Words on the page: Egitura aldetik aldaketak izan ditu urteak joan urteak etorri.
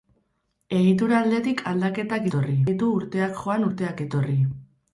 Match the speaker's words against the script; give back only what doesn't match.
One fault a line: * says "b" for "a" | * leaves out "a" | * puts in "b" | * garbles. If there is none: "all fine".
* says "etorri" for "izan"